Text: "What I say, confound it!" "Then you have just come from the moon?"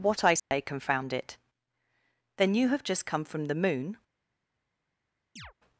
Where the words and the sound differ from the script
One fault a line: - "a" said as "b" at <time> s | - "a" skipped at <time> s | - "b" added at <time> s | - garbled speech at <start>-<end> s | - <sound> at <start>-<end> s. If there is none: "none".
- dropout at 0.4-0.5 s
- chirp at 5.4-5.5 s